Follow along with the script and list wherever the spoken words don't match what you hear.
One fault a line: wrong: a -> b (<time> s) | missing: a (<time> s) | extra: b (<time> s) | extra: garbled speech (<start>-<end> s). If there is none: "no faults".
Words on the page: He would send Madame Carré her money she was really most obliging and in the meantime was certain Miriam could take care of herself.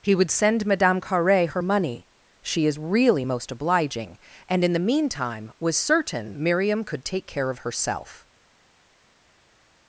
wrong: was -> is (2.6 s)